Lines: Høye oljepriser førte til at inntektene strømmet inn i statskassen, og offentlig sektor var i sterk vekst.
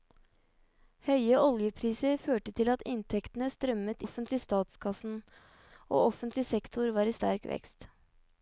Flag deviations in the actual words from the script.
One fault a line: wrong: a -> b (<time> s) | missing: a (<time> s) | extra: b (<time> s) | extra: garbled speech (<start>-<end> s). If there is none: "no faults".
wrong: inn -> offentlig (4.0 s)